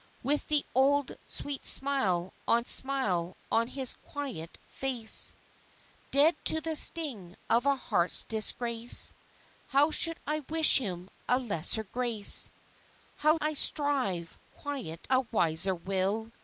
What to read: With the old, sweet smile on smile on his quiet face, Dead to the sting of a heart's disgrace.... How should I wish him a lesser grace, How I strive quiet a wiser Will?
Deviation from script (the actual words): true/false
false